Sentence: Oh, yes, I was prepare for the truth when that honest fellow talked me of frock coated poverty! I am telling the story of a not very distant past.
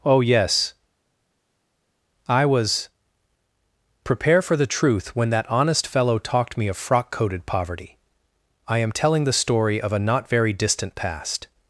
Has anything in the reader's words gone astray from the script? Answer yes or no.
no